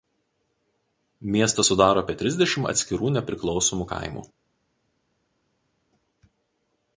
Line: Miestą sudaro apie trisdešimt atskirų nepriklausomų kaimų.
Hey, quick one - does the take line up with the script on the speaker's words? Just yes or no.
yes